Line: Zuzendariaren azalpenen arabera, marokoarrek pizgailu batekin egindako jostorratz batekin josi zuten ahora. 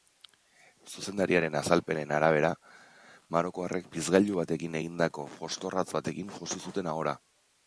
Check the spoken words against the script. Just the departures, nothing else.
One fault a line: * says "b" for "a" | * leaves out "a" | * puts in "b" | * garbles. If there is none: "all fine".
all fine